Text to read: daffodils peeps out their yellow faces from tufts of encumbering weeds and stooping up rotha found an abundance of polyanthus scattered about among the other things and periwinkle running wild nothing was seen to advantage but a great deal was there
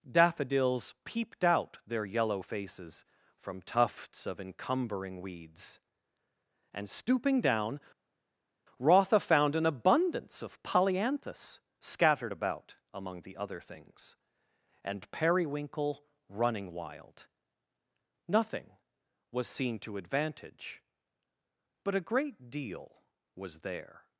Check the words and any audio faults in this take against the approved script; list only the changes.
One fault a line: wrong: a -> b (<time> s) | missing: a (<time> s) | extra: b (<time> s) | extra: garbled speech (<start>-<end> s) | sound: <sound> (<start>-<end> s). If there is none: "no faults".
wrong: peeps -> peeped (1.0 s)
wrong: up -> down (7.4 s)